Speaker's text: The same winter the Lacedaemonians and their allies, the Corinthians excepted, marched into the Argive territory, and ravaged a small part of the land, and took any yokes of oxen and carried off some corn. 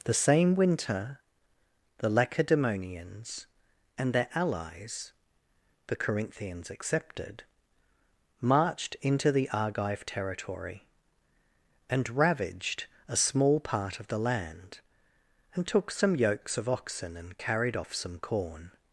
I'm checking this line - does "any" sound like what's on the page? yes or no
no